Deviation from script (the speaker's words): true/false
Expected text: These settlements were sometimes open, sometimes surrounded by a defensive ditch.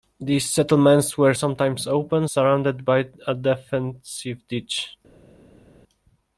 true